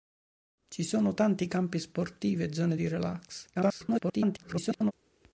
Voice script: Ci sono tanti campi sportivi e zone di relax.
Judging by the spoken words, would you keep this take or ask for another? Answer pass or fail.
fail